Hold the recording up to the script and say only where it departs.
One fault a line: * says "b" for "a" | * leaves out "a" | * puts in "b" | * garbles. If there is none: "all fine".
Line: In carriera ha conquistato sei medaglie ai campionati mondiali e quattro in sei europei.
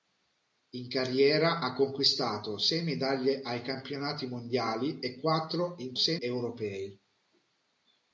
all fine